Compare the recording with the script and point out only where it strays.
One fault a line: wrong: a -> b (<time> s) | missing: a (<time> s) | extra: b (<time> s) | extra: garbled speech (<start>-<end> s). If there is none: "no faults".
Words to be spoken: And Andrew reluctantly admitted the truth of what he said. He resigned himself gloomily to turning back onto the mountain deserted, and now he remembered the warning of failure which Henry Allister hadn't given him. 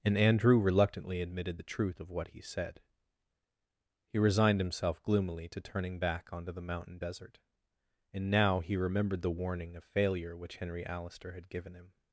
wrong: deserted -> desert (7.0 s)
wrong: hadn't -> had (11.3 s)